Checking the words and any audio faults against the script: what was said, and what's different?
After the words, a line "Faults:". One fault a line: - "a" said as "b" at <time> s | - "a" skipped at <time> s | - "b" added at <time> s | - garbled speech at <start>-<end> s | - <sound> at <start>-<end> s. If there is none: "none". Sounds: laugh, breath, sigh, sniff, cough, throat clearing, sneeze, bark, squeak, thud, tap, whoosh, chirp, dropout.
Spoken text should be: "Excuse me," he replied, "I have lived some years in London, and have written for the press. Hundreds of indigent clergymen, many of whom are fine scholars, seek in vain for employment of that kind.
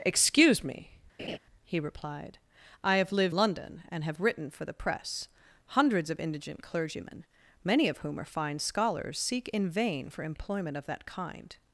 "Excuse me," he replied, "I have lived London, and have written for the press. Hundreds of indigent clergymen, many of whom are fine scholars, seek in vain for employment of that kind.
Faults:
- laugh at 1.2-1.4 s
- "some years in" skipped at 3.3 s